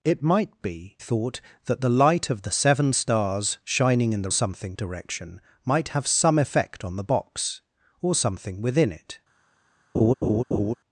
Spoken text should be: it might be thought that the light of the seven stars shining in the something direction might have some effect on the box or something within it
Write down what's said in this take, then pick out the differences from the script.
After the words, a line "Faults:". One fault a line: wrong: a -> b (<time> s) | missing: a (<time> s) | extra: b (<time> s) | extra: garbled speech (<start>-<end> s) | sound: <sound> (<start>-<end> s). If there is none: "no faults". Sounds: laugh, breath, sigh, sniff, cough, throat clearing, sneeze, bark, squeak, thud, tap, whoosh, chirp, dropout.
it might be thought that the light of the seven stars shining in the something direction might have some effect on the box or something within it
Faults:
sound: laugh (9.9-10.7 s)